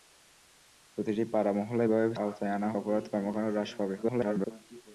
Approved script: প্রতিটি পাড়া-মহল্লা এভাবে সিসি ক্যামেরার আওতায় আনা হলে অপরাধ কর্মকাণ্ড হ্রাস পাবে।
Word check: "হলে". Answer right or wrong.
wrong